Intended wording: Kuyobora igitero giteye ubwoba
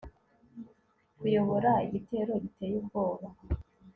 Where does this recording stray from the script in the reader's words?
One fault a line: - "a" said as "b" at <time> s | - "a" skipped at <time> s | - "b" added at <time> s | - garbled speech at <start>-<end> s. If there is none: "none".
none